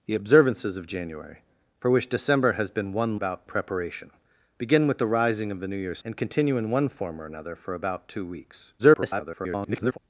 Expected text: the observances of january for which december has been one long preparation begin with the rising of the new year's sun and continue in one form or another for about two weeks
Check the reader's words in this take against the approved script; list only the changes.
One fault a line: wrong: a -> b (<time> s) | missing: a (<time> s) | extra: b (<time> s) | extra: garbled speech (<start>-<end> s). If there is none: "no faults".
wrong: long -> about (3.1 s)
missing: sun (6.0 s)
extra: garbled speech (8.8-10.0 s)